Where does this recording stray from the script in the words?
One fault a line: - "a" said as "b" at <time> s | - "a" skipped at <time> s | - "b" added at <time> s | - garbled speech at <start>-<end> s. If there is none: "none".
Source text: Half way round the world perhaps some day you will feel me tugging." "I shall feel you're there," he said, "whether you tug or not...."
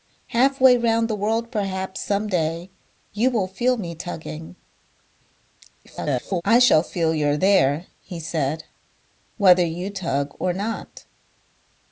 - garbled speech at 5.8-6.4 s